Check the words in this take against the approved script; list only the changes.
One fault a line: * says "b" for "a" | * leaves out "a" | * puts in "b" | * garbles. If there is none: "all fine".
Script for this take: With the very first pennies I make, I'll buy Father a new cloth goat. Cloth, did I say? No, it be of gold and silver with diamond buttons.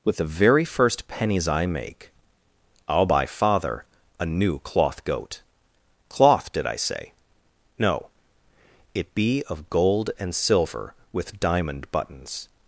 all fine